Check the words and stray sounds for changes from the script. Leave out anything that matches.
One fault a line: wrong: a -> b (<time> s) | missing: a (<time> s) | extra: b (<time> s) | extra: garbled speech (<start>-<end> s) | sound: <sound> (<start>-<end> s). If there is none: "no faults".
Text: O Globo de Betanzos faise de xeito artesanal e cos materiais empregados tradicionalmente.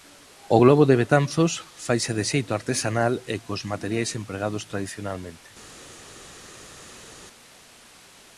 no faults